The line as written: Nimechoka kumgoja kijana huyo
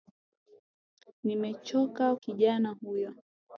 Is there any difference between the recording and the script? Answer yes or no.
yes